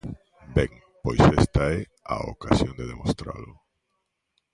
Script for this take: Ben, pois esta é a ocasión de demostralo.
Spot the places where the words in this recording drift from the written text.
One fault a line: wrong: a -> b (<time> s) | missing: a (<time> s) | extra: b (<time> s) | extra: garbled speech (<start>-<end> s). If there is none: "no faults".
no faults